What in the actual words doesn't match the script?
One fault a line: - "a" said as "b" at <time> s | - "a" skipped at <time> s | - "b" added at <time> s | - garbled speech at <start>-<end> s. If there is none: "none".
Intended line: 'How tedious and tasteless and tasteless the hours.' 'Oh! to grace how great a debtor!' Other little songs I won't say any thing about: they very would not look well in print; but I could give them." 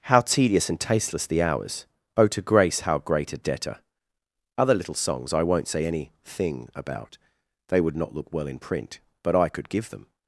- "and tasteless" skipped at 1.3 s
- "very" skipped at 7.8 s